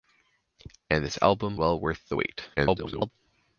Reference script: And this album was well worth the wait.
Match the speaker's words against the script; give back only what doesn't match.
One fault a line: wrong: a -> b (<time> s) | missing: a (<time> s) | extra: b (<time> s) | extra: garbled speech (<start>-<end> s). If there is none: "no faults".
missing: was (1.6 s)
extra: garbled speech (2.6-3.1 s)